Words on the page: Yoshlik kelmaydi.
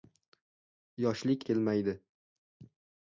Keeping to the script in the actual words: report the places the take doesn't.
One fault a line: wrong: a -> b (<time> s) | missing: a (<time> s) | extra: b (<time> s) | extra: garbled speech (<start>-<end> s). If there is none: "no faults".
no faults